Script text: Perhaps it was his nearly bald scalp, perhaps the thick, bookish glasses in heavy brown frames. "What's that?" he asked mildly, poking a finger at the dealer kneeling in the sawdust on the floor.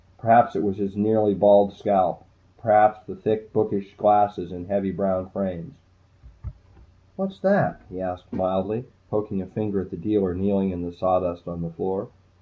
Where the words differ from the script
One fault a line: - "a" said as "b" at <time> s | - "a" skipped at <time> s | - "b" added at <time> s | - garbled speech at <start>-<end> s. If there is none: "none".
none